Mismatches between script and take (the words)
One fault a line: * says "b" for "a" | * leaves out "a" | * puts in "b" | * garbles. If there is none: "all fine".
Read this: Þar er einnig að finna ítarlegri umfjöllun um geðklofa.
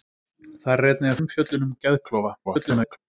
* leaves out "finna ítarlegri"
* garbles